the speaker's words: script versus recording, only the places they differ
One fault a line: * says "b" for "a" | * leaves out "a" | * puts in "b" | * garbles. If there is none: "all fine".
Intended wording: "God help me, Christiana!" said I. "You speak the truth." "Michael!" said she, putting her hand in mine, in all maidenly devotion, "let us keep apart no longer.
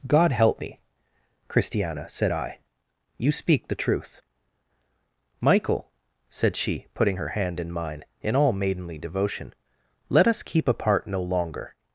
all fine